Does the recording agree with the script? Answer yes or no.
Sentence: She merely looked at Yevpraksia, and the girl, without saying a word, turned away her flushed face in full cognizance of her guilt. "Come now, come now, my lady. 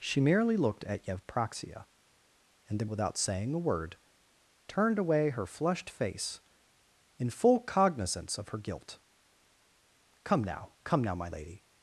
no